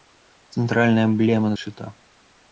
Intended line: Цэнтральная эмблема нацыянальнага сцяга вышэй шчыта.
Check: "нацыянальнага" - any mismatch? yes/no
yes